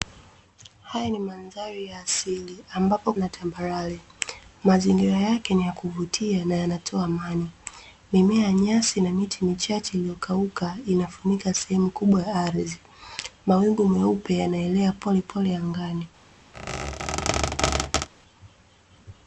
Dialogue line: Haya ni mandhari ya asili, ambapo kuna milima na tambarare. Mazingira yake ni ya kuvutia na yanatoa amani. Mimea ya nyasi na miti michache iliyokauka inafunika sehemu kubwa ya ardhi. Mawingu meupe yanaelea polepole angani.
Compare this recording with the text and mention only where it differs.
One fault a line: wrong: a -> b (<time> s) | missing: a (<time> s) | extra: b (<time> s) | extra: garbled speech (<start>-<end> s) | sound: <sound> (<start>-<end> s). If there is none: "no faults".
missing: kuna milima (3.1 s)
sound: squeak (16.5-18.1 s)